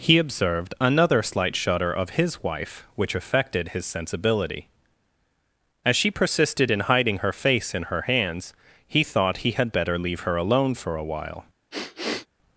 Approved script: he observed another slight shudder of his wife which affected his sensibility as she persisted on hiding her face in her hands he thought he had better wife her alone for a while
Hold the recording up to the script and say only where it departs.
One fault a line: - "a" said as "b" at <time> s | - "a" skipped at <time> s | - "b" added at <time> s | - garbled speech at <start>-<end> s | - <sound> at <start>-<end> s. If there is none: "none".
- "on" said as "in" at 6.7 s
- "wife" said as "leave" at 10.0 s
- sniff at 11.7-12.3 s